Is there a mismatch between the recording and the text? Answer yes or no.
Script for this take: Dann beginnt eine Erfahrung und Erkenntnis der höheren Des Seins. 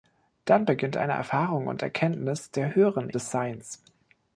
no